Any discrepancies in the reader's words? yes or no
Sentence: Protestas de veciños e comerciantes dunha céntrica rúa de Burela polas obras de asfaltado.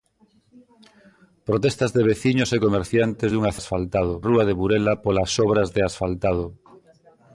yes